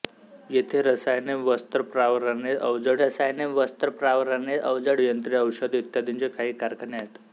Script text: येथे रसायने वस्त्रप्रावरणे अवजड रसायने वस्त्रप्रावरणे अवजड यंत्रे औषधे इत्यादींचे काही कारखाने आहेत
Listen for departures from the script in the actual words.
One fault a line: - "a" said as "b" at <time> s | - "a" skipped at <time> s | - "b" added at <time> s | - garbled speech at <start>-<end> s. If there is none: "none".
none